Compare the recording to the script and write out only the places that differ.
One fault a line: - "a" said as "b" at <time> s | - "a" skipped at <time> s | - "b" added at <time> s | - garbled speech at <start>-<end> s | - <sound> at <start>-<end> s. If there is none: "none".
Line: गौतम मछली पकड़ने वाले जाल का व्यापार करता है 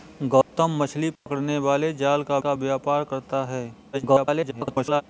- dropout at 0.4-0.5 s
- dropout at 1.2-1.3 s
- "का" added at 2.4 s
- garbled speech at 3.9-5.0 s